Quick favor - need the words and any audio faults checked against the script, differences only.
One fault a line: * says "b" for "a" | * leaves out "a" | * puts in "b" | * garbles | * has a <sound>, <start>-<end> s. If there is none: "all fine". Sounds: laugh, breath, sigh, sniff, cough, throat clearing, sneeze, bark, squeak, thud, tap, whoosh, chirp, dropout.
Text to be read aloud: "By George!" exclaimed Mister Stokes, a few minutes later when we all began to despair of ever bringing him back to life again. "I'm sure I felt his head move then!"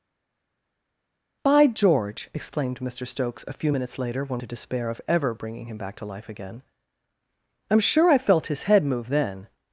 * leaves out "we all began"